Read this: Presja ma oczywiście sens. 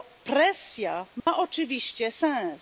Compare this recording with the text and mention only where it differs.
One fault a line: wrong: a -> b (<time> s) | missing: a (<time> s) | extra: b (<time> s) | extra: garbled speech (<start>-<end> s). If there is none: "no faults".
no faults